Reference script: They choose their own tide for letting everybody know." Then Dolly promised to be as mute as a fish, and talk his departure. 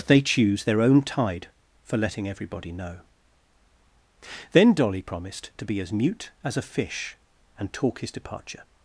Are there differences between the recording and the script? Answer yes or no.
no